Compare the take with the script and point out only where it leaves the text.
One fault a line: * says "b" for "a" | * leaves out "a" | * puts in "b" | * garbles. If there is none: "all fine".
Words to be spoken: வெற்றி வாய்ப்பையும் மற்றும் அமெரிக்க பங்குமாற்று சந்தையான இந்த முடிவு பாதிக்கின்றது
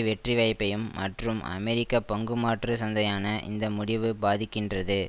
all fine